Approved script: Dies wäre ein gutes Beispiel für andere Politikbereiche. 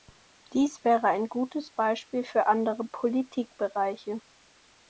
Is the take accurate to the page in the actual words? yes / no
yes